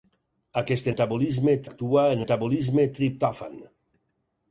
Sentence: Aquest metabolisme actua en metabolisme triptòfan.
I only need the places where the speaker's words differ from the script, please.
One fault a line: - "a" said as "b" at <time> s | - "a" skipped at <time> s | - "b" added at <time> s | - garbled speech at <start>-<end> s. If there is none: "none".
none